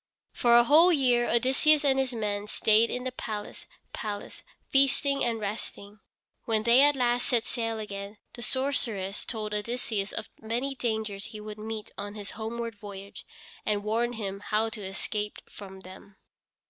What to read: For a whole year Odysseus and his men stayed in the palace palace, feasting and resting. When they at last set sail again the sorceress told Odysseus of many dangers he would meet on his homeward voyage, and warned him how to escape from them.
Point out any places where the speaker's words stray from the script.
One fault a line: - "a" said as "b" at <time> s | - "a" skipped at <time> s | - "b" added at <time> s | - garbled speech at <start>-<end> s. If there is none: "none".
none